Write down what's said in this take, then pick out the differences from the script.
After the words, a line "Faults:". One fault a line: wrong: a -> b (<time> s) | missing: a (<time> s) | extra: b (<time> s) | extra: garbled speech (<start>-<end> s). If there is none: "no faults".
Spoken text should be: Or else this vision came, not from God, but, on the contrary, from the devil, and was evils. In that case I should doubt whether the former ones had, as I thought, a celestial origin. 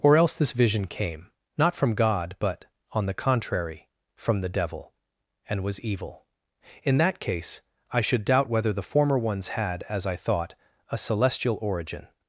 Or else this vision came, not from God, but, on the contrary, from the devil, and was evil. In that case I should doubt whether the former ones had, as I thought, a celestial origin.
Faults:
wrong: evils -> evil (5.8 s)